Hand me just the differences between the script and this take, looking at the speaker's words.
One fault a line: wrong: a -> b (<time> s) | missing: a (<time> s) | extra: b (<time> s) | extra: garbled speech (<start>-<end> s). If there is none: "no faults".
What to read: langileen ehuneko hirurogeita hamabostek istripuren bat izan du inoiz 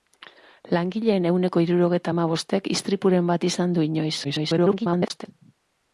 extra: garbled speech (4.2-5.3 s)